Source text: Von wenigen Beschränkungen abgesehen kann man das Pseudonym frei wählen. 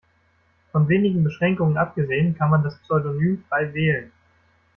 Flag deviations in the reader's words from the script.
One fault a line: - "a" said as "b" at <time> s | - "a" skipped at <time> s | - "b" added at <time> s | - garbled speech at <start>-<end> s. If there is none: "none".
none